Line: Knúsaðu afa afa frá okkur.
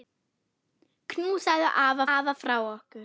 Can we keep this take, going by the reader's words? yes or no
yes